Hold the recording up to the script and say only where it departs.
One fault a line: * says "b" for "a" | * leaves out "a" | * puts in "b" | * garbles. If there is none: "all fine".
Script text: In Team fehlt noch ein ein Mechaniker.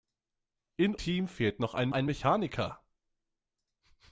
all fine